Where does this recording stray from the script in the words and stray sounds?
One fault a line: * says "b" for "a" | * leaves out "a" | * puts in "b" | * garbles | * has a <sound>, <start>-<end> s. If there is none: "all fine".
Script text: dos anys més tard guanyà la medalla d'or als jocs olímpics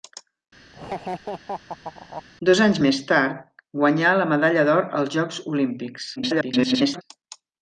* has a laugh, 0.7-2.2 s
* garbles